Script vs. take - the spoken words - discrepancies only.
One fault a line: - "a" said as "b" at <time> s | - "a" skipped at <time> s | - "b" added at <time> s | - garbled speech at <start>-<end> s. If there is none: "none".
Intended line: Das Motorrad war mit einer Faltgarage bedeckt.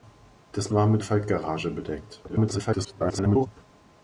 - "Motorrad" skipped at 0.7 s
- "einer" skipped at 1.0 s
- garbled speech at 2.3-3.5 s